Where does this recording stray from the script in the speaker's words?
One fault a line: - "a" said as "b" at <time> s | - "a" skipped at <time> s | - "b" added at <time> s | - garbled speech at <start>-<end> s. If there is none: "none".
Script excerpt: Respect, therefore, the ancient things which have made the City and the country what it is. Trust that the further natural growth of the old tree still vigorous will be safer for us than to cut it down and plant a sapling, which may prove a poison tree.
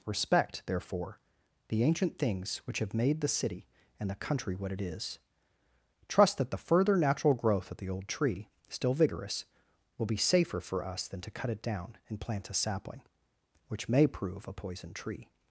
none